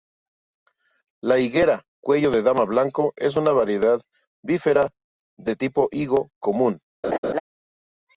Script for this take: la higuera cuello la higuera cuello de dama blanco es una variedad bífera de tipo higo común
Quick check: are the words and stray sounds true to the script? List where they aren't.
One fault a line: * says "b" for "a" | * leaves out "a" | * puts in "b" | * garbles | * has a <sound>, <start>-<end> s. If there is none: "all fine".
* leaves out "la higuera cuello"
* has a laugh, 7.0-7.4 s